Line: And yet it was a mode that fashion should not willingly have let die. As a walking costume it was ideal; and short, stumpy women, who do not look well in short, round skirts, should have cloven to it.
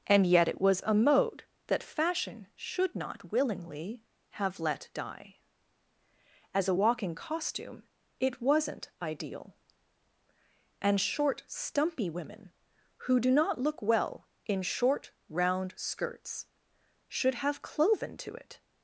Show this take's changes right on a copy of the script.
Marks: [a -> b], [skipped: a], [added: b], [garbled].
And yet it was a mode that fashion should not willingly have let die. As a walking costume it [was -> wasn't] ideal; and short, stumpy women, who do not look well in short, round skirts, should have cloven to it.